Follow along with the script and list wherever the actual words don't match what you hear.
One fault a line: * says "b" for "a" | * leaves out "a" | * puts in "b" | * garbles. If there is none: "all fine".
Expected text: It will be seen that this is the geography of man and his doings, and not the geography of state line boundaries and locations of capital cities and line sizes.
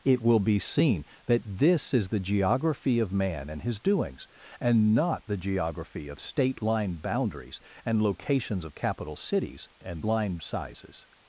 all fine